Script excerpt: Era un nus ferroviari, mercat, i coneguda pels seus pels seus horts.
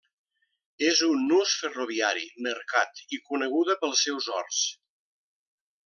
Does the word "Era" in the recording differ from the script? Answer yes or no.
yes